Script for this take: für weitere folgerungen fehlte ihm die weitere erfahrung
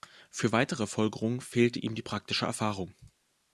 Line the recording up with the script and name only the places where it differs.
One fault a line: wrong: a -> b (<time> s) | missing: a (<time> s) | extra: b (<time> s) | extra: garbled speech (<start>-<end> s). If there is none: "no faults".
wrong: weitere -> praktische (2.0 s)